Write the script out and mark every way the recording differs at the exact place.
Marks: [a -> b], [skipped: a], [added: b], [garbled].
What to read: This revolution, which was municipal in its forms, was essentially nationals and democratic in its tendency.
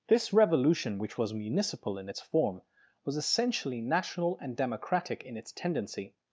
This revolution, which was municipal in its [forms, -> form] was essentially [nationals -> national] and democratic in its tendency.